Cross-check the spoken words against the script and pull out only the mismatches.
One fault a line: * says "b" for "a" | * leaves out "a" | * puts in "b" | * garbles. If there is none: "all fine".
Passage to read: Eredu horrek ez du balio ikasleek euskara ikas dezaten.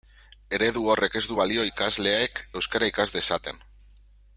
all fine